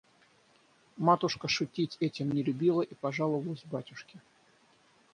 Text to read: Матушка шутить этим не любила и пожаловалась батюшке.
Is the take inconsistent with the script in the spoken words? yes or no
no